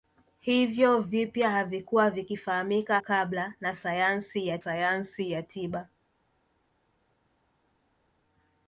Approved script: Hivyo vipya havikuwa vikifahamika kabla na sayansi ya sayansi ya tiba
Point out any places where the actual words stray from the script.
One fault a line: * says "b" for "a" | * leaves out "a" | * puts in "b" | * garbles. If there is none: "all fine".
all fine